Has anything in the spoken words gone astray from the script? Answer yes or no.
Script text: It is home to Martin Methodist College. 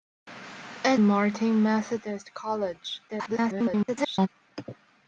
yes